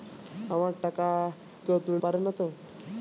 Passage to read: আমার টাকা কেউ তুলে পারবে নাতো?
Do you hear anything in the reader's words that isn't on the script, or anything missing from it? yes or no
no